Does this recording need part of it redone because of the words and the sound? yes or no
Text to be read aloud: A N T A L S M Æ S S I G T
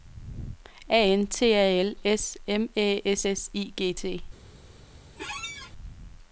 yes